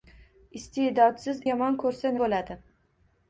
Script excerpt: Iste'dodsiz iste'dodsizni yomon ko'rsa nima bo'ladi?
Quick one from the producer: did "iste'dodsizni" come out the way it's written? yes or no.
no